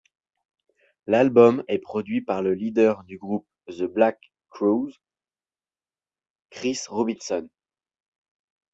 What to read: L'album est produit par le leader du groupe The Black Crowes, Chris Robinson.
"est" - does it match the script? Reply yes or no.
yes